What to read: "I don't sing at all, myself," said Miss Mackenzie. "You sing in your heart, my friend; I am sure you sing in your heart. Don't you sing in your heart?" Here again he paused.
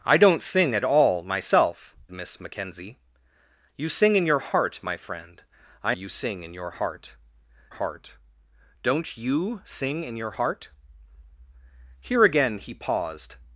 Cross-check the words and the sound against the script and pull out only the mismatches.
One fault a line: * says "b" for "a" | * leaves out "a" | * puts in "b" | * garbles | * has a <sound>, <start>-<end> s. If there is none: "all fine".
* leaves out "said"
* leaves out "am sure"
* puts in "heart"